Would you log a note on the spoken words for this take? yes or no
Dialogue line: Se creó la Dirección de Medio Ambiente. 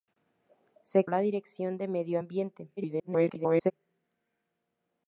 yes